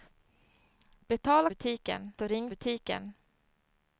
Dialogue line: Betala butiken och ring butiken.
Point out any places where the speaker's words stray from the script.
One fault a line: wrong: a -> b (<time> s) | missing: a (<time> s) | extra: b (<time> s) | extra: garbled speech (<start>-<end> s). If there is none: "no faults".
no faults